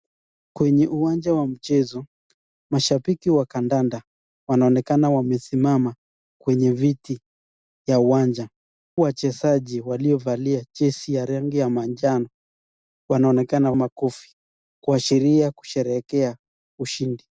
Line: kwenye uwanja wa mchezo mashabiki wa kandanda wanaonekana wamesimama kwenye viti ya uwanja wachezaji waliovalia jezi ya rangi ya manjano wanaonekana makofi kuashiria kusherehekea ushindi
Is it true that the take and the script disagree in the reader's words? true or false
false